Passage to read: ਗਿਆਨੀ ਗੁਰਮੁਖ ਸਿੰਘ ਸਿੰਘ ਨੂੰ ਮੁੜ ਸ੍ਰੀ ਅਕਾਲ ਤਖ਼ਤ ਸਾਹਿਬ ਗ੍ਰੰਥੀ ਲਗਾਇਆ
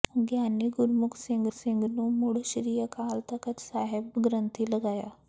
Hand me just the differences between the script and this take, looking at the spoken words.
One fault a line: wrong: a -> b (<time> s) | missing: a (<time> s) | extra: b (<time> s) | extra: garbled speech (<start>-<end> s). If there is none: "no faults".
no faults